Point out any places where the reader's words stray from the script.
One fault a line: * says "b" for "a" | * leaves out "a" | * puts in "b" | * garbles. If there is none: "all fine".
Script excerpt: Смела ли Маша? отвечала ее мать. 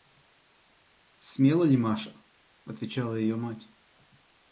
all fine